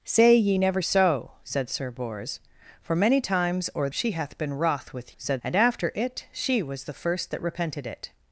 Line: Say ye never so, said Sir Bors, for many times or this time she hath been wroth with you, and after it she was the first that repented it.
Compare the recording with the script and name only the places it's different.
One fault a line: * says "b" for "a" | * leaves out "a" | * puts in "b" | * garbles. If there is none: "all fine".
* leaves out "this time"
* says "said" for "you"